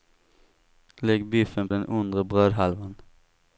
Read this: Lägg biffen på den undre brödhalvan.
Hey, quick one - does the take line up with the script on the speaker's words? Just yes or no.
no